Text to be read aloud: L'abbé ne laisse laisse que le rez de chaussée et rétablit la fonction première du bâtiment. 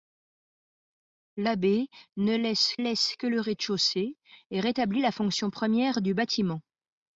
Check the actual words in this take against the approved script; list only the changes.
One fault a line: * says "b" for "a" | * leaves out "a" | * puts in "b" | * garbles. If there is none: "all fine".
all fine